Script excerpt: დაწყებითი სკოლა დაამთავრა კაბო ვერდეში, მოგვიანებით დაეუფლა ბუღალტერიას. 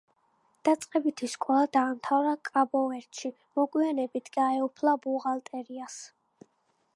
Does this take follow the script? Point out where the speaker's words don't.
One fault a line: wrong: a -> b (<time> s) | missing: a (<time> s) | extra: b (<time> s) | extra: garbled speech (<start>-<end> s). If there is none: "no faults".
no faults